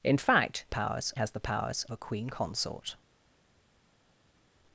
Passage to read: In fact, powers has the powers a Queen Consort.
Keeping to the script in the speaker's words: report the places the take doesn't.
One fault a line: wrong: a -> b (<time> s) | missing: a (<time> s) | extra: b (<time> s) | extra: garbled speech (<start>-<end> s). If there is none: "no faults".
no faults